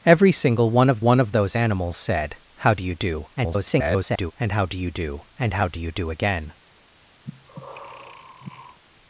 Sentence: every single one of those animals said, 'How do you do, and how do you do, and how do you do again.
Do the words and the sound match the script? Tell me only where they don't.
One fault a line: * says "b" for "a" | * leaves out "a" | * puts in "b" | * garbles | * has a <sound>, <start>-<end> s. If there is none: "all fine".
* puts in "one of"
* garbles
* has a breath, 7.2-8.8 s